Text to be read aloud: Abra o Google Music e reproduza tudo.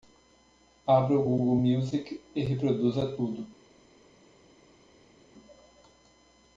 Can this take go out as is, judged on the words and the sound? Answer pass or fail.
pass